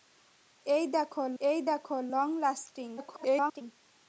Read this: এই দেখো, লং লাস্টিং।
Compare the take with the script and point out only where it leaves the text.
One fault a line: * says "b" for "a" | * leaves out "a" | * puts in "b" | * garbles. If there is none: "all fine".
* puts in "এই দেখো"
* garbles